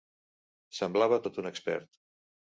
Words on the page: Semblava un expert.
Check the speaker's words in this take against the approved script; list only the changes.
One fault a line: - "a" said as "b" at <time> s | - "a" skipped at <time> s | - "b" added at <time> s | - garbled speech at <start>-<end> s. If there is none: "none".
- "tot" added at 1.3 s